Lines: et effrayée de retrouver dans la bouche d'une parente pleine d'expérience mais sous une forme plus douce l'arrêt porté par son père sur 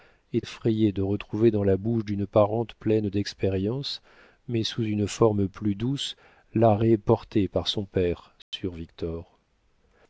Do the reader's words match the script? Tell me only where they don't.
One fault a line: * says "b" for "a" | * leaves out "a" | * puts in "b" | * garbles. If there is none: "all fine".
all fine